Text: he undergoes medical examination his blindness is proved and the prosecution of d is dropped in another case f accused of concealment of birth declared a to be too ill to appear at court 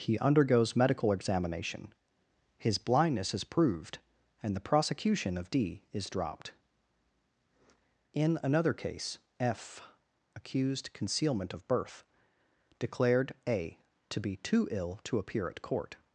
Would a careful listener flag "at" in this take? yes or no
no